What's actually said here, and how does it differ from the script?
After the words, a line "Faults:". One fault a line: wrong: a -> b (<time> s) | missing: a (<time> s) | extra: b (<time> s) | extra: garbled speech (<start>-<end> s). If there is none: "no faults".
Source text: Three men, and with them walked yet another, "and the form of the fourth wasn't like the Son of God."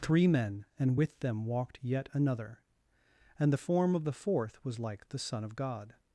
Three men, and with them walked yet another, "and the form of the fourth was like the Son of God."
Faults:
wrong: wasn't -> was (4.6 s)